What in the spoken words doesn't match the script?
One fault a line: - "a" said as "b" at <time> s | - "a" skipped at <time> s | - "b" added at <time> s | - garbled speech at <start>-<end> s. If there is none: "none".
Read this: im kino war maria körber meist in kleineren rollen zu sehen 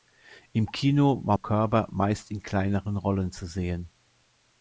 - "maria" skipped at 1.4 s